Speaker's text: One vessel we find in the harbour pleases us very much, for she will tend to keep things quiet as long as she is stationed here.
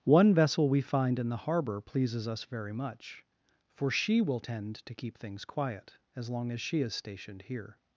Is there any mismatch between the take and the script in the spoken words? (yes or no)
no